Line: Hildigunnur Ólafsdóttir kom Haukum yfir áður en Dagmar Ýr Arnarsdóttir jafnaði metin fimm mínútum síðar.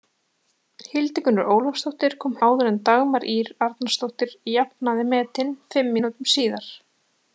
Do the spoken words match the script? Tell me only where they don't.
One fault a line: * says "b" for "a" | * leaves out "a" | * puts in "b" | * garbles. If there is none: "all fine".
* leaves out "Haukum yfir"